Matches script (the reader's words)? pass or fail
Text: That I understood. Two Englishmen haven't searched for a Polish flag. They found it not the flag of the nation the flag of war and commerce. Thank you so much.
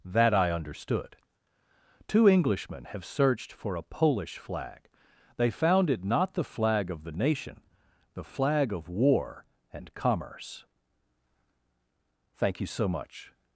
fail